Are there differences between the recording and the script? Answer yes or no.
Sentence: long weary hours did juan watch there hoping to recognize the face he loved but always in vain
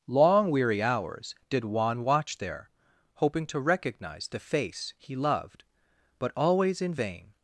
no